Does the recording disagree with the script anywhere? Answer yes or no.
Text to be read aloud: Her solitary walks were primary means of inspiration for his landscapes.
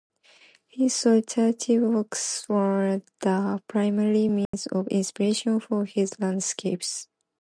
yes